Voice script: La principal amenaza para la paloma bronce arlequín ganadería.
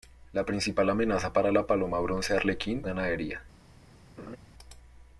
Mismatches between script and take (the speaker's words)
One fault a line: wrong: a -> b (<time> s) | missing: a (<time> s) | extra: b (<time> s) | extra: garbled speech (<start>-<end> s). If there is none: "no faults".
no faults